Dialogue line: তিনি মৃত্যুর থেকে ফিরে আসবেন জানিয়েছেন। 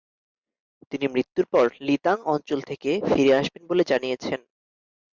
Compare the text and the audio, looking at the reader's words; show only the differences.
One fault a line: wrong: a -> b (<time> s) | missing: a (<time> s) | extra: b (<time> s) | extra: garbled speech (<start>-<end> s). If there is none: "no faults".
extra: পর লিতাং অঞ্চল (1.4 s)
extra: বলে (3.7 s)